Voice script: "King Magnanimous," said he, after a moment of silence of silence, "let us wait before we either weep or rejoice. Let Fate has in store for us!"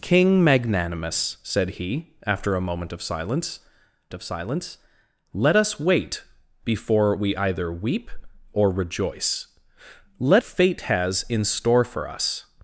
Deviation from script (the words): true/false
false